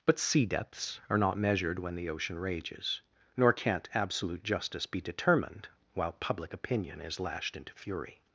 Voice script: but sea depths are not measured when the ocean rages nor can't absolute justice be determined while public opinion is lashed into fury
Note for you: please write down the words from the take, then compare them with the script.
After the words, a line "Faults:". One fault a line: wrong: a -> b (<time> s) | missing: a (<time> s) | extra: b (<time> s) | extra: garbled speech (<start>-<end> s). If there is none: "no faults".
but sea depths are not measured when the ocean rages nor can't absolute justice be determined while public opinion is lashed into fury
Faults:
no faults